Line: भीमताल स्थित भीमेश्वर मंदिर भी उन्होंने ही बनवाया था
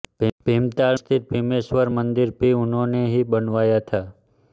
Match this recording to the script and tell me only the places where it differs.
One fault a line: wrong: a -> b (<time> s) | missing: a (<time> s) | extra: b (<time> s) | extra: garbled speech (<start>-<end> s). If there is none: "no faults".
no faults